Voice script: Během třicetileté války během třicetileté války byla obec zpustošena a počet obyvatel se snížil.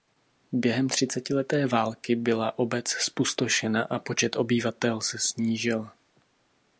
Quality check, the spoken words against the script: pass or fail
fail